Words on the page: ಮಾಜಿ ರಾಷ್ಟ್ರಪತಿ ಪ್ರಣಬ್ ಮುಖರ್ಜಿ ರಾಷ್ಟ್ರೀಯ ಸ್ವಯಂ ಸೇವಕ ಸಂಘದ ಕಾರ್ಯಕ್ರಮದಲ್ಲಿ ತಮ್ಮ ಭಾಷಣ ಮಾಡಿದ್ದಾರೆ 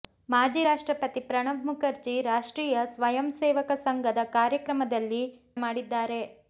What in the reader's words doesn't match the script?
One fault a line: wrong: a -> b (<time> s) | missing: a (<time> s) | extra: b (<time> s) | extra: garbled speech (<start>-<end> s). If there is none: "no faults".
missing: ತಮ್ಮ ಭಾಷಣ (5.2 s)